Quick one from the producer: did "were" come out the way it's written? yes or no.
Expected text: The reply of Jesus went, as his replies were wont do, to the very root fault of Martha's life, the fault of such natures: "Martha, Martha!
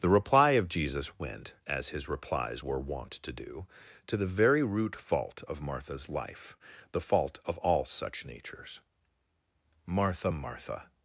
yes